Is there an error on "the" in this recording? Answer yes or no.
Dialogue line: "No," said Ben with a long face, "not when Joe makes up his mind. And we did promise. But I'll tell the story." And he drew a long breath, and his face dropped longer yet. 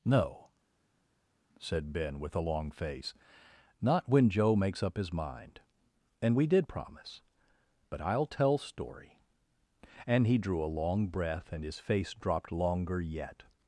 yes